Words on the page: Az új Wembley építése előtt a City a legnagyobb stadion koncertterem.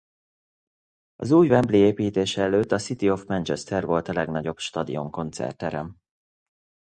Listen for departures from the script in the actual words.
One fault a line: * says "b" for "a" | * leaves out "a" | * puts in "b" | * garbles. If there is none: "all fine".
* puts in "of Manchester volt"